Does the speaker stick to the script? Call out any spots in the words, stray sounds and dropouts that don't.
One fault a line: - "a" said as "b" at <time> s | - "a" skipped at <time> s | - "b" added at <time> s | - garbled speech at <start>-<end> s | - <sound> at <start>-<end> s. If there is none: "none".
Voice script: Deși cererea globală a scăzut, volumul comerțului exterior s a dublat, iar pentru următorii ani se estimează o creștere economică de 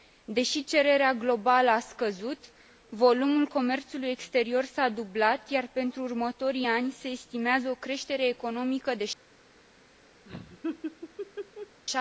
- laugh at 10.2-11.8 s